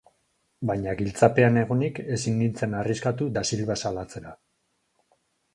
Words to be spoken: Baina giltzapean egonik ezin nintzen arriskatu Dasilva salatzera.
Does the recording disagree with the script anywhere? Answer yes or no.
no